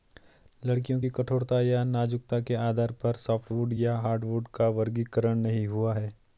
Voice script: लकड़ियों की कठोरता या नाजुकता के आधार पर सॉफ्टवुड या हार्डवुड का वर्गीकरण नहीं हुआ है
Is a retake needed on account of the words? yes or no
no